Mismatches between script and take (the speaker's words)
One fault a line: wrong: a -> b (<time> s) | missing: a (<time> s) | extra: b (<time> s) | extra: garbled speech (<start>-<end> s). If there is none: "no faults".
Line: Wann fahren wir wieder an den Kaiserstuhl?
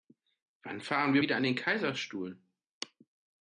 no faults